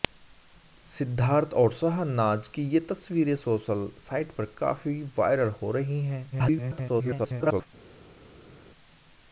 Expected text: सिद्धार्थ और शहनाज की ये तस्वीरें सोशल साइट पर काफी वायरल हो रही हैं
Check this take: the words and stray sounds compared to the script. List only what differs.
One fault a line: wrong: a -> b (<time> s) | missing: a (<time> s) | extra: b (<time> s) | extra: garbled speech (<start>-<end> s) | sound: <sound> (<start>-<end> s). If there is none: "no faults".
extra: garbled speech (6.3-7.7 s)